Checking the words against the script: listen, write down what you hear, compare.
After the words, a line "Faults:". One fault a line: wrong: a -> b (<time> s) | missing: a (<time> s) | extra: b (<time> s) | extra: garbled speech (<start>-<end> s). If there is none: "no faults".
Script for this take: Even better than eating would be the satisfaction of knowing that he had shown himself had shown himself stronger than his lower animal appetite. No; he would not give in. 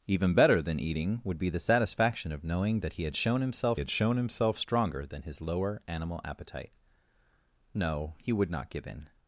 Even better than eating would be the satisfaction of knowing that he had shown himself had shown himself stronger than his lower animal appetite. No; he would not give in.
Faults:
no faults